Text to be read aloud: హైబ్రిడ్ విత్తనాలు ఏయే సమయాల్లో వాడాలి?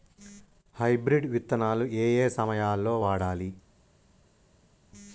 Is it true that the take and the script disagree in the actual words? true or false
false